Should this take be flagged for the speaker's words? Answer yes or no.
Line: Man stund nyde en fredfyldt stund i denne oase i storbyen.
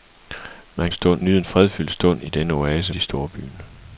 no